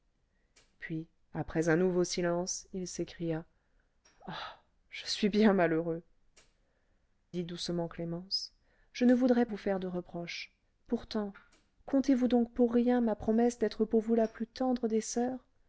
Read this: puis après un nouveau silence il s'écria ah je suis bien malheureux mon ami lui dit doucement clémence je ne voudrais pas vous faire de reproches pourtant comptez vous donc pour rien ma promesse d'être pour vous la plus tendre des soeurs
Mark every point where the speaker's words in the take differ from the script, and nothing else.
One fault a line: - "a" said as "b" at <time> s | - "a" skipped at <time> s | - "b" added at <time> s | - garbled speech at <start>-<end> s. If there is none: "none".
- "mon ami lui" skipped at 6.0 s
- "pas" skipped at 9.5 s